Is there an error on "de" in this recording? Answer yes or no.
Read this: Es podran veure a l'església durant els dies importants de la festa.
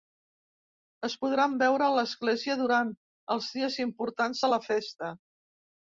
no